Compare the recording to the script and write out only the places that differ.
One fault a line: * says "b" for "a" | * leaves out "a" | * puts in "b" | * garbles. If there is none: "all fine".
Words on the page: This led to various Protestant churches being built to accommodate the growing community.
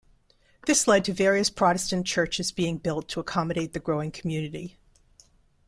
all fine